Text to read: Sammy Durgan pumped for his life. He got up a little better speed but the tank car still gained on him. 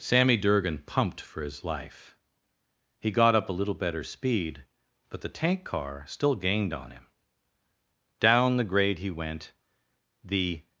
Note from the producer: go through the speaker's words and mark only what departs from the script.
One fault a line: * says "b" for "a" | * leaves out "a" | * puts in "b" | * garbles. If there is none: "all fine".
* puts in "Down the grade he went the"